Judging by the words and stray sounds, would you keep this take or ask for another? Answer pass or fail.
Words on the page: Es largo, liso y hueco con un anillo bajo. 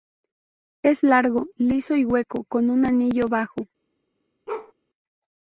fail